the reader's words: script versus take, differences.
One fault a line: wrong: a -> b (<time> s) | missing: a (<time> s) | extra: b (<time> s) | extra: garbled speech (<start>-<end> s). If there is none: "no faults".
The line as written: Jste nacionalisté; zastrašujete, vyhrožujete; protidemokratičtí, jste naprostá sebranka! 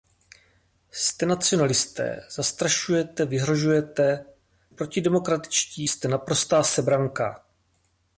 no faults